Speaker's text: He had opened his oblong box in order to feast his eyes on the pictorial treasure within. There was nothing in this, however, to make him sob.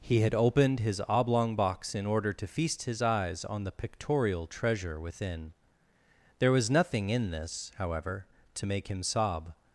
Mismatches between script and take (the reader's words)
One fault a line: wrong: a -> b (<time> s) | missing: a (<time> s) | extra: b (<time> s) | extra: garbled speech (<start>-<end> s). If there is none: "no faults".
no faults